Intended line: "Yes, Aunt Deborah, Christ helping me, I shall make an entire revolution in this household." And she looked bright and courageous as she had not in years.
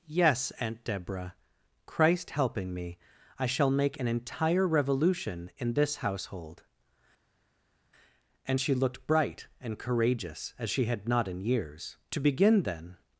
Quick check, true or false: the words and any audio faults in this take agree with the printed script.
false